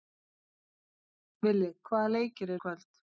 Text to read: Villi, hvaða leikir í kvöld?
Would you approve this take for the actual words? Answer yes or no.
yes